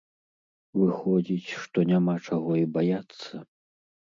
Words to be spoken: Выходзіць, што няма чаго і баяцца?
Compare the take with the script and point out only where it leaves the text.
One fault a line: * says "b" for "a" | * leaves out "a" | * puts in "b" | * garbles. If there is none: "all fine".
all fine